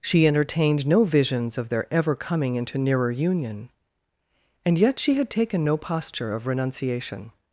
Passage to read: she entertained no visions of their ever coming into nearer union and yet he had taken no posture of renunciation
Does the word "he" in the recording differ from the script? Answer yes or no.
yes